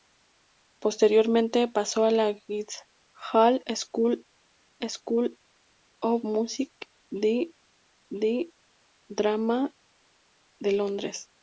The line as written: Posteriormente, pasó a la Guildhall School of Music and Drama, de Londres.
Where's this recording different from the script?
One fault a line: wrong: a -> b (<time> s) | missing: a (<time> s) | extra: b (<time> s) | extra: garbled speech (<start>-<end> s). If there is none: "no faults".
extra: School (4.9 s)
extra: and (8.1 s)